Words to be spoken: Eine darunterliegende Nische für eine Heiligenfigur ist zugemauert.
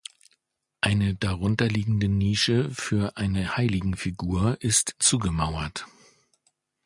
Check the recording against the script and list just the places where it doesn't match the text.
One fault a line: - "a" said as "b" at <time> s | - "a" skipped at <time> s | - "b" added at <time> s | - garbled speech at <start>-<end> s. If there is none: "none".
none